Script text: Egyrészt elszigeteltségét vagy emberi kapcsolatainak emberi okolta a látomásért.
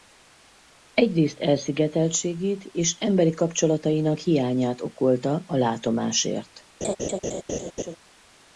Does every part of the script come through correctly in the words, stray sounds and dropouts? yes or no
no